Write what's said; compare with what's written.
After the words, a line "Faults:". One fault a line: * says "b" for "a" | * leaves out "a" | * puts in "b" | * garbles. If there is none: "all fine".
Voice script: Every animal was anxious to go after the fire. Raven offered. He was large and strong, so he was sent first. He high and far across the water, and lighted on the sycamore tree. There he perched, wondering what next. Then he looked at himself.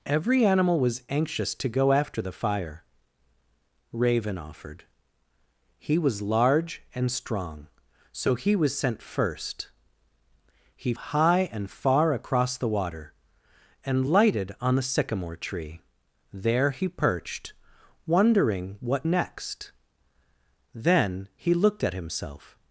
Every animal was anxious to go after the fire. Raven offered. He was large and strong, so he was sent first. He high and far across the water, and lighted on the sycamore tree. There he perched, wondering what next. Then he looked at himself.
Faults:
all fine